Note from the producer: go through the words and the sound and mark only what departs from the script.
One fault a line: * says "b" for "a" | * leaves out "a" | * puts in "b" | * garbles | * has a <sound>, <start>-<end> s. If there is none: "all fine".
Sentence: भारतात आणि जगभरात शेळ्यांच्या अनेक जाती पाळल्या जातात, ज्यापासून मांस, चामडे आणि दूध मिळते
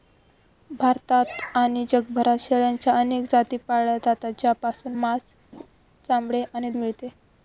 * has a laugh, 5.5-5.7 s
* leaves out "दूध"